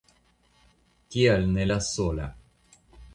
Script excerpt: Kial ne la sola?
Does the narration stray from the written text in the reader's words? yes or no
no